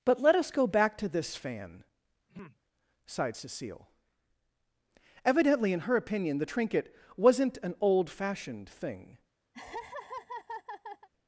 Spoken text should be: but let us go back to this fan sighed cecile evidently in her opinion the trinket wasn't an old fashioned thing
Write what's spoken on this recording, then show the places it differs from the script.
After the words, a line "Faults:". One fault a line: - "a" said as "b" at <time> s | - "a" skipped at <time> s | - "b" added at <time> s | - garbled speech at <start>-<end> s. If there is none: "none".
but let us go back to this fan sighed cecile evidently in her opinion the trinket wasn't an old fashioned thing
Faults:
none